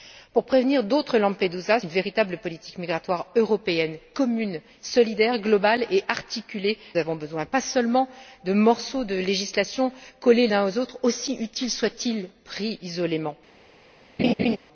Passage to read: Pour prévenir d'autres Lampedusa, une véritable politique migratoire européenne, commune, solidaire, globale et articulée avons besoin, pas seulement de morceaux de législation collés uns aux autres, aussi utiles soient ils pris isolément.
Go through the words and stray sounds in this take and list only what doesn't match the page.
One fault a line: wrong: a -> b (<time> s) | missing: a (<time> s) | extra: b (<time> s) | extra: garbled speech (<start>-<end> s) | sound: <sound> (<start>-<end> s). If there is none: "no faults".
sound: laugh (14.2-14.6 s)